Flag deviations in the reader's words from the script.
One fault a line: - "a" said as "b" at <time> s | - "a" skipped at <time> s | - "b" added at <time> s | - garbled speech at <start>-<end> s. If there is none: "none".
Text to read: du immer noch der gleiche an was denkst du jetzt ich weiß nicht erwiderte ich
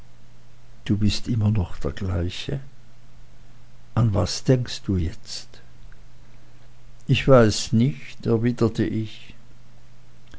- "bist" added at 1.0 s